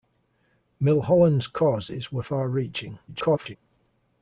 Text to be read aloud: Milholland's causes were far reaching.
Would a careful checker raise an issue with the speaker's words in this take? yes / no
yes